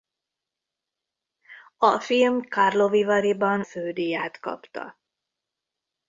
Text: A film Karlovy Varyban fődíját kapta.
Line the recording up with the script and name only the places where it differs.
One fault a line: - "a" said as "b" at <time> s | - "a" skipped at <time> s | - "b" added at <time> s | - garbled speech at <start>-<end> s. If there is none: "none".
none